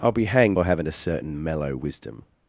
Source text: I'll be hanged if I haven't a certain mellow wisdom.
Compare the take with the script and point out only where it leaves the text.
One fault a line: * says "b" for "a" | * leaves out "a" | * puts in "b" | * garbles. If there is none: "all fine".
* leaves out "if"